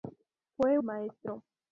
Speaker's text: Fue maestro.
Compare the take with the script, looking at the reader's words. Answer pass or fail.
pass